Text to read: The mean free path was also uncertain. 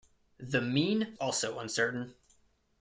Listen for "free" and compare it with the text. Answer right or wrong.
wrong